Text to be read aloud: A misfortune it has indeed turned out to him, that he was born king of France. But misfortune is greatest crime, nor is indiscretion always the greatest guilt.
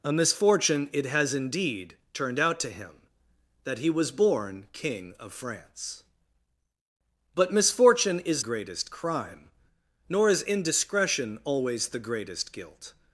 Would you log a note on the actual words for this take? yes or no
no